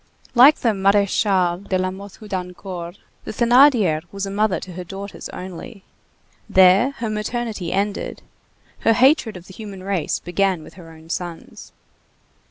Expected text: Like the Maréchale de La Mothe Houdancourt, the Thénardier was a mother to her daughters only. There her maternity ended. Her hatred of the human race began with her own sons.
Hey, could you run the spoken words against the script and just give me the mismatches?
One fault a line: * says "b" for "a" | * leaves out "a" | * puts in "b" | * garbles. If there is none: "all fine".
all fine